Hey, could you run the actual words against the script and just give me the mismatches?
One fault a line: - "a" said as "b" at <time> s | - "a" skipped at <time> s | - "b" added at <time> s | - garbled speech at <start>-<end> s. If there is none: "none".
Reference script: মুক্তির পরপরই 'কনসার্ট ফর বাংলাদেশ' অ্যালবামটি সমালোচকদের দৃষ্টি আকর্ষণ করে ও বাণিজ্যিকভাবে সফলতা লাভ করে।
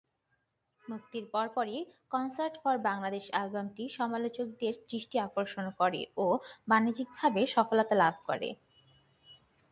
none